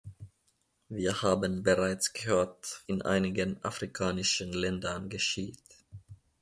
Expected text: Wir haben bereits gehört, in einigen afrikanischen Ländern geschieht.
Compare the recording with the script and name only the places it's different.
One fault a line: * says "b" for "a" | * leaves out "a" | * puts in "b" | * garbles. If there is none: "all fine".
all fine